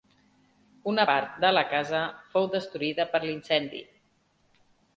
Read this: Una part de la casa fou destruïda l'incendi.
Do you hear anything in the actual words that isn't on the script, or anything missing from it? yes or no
yes